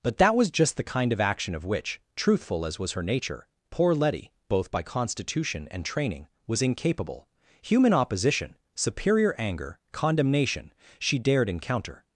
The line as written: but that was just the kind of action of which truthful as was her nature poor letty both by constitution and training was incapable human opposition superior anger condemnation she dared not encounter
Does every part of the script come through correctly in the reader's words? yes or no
no